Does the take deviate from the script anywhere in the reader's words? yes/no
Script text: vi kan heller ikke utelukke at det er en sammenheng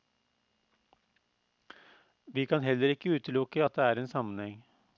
no